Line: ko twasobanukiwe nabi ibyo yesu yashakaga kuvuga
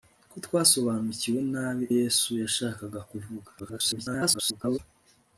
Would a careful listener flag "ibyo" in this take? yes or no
yes